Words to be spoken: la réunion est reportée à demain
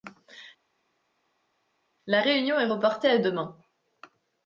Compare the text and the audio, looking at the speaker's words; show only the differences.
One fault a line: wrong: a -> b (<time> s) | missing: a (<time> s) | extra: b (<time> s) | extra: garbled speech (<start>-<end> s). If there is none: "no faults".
no faults